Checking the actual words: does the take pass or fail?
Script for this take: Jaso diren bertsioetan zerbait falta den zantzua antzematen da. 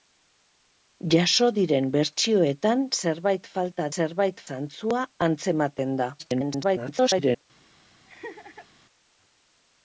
fail